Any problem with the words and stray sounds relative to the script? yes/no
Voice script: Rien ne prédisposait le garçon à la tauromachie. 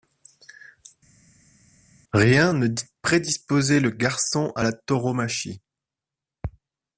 no